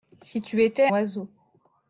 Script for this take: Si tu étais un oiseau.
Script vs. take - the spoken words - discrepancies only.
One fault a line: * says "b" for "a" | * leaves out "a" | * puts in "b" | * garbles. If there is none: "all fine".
* leaves out "un"